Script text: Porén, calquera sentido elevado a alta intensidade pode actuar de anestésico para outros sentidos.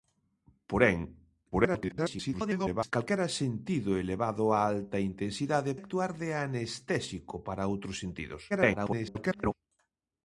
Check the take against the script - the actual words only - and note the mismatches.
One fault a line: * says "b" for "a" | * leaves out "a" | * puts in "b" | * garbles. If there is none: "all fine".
* garbles
* leaves out "pode"
* garbles